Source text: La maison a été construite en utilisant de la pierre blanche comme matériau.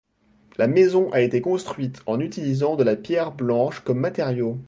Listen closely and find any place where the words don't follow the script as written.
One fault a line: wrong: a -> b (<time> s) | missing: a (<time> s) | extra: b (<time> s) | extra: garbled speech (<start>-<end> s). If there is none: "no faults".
no faults